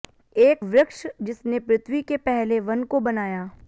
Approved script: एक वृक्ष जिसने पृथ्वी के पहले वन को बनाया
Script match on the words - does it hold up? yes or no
yes